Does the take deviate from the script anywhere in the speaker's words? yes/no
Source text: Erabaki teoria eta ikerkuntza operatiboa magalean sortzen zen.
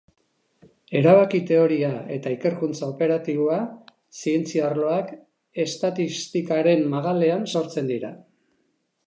yes